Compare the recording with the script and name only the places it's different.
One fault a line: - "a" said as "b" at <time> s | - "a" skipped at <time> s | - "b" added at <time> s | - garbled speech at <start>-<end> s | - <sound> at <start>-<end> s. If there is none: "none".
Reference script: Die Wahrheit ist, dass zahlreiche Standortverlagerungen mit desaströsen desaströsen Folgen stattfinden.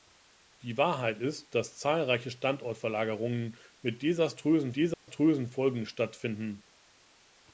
- dropout at 4.9-5.1 s